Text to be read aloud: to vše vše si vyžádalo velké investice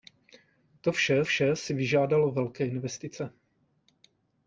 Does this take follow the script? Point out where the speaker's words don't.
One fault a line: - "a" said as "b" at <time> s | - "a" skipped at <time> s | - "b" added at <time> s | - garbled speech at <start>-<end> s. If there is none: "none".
none